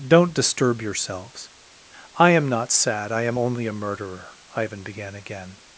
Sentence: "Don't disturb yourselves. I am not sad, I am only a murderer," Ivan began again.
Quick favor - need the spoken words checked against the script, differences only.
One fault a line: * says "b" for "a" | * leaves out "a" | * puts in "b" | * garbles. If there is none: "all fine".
all fine